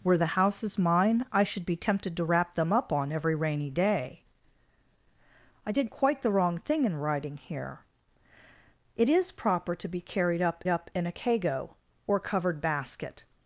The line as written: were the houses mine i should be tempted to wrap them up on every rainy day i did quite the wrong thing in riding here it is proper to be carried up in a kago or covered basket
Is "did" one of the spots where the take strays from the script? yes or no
no